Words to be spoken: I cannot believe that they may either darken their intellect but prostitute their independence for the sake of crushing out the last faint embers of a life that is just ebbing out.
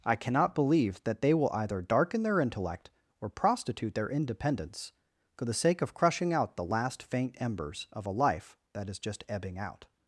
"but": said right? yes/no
no